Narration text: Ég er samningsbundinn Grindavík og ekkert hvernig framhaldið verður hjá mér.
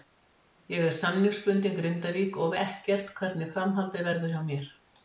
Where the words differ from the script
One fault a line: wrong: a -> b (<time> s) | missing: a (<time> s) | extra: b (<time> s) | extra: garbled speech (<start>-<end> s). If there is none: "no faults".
no faults